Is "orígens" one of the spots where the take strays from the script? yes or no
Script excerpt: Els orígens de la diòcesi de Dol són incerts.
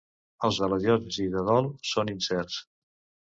yes